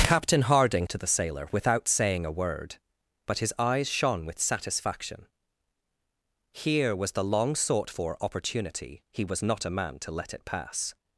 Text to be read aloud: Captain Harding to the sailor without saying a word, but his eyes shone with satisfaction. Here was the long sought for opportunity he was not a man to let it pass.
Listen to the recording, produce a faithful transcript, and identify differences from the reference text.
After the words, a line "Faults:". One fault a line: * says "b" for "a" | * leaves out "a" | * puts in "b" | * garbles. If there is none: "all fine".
Captain Harding to the sailor without saying a word, but his eyes shone with satisfaction. Here was the long sought for opportunity he was not a man to let it pass.
Faults:
all fine